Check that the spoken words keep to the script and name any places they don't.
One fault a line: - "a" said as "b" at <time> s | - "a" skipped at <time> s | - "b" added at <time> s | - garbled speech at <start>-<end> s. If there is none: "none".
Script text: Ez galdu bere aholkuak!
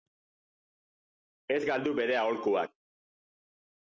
none